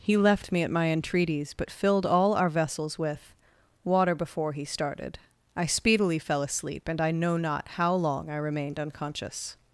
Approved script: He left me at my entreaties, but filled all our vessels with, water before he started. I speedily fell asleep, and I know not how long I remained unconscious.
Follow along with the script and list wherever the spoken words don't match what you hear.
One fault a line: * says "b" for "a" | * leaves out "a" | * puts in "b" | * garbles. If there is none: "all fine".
all fine